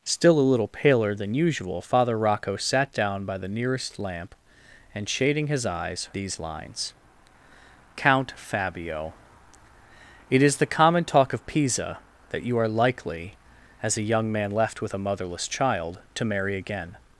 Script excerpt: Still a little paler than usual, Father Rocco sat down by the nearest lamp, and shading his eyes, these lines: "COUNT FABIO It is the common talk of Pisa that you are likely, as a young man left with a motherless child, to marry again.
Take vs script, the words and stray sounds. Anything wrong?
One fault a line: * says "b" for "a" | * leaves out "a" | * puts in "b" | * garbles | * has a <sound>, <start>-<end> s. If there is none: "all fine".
all fine